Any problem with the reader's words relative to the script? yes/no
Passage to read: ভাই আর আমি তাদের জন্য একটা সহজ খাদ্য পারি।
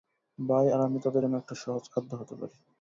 yes